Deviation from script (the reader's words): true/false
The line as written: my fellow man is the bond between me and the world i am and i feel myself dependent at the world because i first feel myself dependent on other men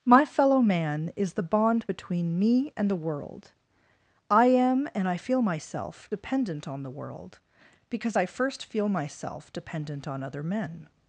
true